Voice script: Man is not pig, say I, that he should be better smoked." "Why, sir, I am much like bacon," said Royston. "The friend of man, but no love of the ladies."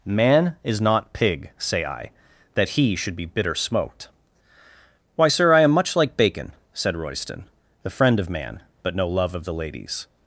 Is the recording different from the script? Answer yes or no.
yes